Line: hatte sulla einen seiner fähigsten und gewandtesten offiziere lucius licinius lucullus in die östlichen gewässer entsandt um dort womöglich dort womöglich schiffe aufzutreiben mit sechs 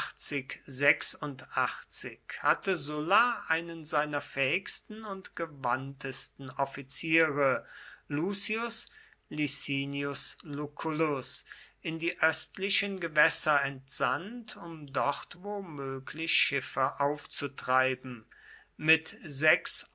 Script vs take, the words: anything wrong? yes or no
yes